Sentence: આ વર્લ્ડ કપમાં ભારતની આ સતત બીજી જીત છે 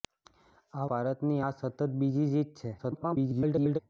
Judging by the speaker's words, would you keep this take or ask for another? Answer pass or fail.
fail